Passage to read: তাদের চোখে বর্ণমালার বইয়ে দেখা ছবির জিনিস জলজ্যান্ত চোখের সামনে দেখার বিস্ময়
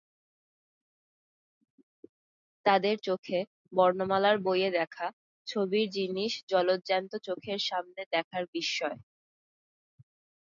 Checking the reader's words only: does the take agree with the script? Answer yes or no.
yes